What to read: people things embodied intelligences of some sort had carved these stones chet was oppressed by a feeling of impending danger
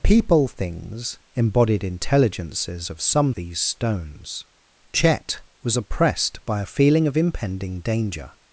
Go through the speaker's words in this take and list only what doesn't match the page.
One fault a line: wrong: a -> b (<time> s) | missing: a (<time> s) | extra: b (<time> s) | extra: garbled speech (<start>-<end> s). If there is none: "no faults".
missing: sort had carved (3.3 s)